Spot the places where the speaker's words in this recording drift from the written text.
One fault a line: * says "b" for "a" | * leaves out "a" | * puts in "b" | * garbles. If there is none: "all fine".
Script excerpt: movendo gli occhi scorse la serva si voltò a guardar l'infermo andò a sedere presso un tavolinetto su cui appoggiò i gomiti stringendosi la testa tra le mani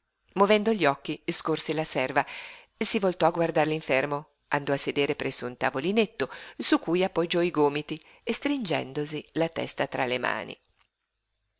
all fine